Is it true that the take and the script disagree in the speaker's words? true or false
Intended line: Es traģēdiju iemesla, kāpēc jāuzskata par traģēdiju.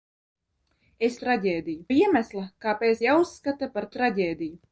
false